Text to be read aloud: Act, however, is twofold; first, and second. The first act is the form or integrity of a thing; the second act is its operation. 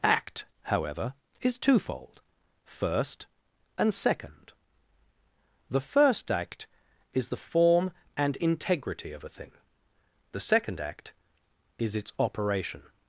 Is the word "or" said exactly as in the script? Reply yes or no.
no